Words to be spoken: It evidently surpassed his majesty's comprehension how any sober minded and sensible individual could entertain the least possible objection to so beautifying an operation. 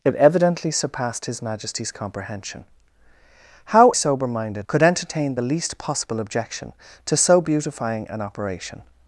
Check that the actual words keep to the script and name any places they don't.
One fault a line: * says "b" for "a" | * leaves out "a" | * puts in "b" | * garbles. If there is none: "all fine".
* leaves out "any"
* leaves out "and sensible individual"